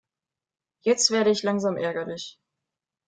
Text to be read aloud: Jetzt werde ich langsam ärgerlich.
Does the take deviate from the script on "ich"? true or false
false